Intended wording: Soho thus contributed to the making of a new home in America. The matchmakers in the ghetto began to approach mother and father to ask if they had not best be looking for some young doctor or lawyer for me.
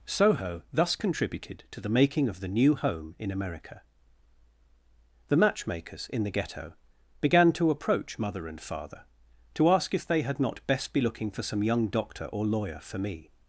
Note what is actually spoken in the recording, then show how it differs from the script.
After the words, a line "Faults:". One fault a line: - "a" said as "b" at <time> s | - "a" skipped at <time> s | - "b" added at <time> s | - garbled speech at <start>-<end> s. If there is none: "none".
Soho thus contributed to the making of the new home in America. The matchmakers in the ghetto began to approach mother and father to ask if they had not best be looking for some young doctor or lawyer for me.
Faults:
- "a" said as "the" at 2.4 s